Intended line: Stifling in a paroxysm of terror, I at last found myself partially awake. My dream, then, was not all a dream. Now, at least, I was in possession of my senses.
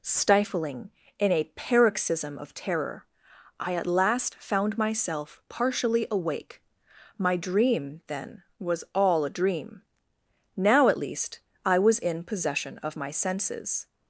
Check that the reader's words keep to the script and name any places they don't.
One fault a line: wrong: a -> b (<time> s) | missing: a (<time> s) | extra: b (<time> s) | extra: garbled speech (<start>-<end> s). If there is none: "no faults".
missing: not (8.9 s)